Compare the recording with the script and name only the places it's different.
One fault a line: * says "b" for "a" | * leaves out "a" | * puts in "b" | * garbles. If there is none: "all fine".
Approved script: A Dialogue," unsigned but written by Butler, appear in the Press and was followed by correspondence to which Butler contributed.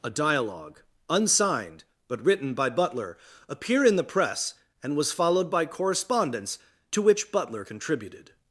all fine